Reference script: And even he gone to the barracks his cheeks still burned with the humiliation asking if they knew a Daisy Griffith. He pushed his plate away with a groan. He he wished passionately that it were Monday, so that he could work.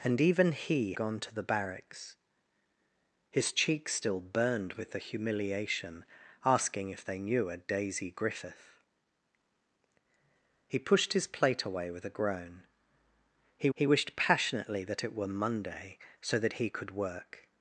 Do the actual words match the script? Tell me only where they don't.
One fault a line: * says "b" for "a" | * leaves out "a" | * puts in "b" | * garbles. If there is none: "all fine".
all fine